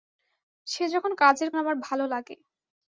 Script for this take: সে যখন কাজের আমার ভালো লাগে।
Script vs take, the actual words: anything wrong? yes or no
no